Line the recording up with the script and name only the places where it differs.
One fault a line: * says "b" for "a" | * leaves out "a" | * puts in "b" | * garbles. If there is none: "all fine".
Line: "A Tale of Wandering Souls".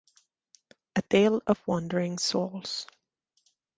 all fine